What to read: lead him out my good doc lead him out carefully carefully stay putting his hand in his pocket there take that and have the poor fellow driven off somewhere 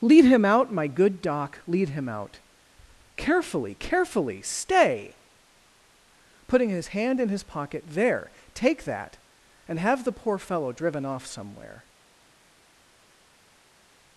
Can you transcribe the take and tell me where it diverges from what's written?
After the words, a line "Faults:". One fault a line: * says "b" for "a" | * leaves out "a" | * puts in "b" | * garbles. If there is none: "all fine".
lead him out my good doc lead him out carefully carefully stay putting his hand in his pocket there take that and have the poor fellow driven off somewhere
Faults:
all fine